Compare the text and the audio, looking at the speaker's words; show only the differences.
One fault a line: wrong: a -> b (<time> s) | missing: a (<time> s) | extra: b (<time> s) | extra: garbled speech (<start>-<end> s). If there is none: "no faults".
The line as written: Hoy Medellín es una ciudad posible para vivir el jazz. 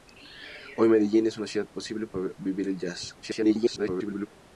extra: garbled speech (3.2-4.3 s)